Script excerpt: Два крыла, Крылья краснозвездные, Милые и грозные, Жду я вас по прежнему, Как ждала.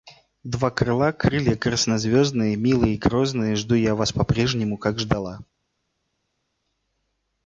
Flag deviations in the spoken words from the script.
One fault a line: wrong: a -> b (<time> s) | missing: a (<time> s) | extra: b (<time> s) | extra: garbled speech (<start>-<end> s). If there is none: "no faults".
no faults